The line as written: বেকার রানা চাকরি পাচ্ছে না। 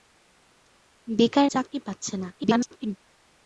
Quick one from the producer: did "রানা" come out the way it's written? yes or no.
no